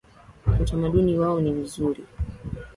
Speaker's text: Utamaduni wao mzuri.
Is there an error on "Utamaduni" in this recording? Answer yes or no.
no